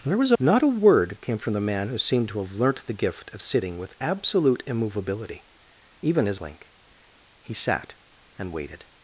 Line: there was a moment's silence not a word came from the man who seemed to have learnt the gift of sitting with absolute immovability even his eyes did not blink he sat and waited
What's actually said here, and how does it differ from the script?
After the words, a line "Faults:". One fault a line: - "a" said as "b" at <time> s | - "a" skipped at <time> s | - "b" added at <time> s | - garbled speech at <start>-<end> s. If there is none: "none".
there was a not a word came from the man who seemed to have learnt the gift of sitting with absolute immovability even his blink he sat and waited
Faults:
- "moment's silence" skipped at 0.4 s
- "eyes did not" skipped at 6.4 s